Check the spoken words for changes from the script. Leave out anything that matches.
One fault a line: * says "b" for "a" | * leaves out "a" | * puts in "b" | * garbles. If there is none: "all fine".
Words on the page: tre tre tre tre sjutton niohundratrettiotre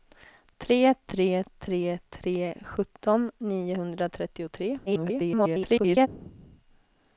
* garbles